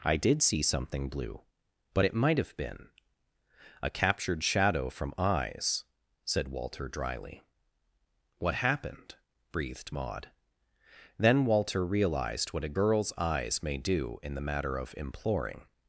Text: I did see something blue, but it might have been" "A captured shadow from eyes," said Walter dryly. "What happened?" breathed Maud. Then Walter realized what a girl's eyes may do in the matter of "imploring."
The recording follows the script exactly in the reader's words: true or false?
true